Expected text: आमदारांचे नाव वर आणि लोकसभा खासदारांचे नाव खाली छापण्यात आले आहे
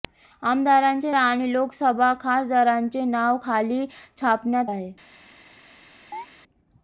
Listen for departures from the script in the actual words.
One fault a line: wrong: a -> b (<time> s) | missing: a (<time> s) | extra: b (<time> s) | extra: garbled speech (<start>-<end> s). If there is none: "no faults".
missing: नाव वर (1.1 s)
missing: आले (4.7 s)